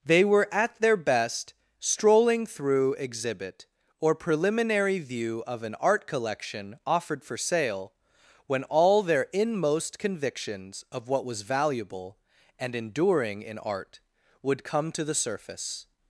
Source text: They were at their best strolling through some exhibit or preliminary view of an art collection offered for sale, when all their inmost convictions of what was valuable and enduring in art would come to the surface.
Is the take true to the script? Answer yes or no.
no